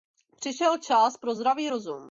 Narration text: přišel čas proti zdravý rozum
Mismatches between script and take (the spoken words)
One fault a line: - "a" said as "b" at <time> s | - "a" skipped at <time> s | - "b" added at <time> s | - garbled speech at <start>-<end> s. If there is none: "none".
- "proti" said as "pro" at 1.2 s